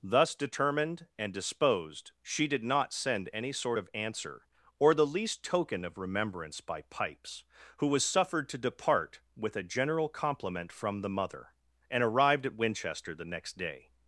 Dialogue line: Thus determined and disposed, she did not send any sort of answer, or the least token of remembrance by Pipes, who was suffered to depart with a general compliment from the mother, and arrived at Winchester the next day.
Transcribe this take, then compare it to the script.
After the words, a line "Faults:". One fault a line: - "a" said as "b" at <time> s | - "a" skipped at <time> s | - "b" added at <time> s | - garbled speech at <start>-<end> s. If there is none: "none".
Thus determined and disposed, she did not send any sort of answer, or the least token of remembrance by Pipes, who was suffered to depart with a general compliment from the mother, and arrived at Winchester the next day.
Faults:
none